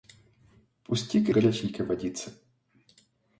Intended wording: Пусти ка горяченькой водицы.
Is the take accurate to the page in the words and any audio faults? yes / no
yes